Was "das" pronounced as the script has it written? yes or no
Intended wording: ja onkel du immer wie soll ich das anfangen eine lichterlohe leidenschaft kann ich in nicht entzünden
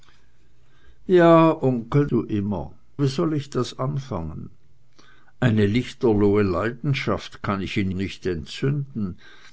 yes